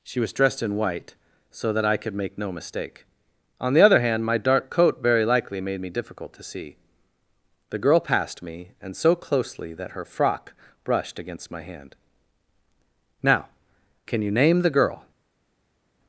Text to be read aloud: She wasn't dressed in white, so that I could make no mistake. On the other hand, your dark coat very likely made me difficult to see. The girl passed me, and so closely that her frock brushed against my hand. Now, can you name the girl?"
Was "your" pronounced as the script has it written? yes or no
no